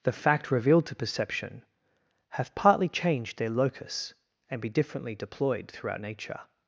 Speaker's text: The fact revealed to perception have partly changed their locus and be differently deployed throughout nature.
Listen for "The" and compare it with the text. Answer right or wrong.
right